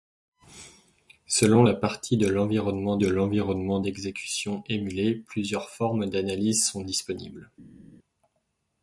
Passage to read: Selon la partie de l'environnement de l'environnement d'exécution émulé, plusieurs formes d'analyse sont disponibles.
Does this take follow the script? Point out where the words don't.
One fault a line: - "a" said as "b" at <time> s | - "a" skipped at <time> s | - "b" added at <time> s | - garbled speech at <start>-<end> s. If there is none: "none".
none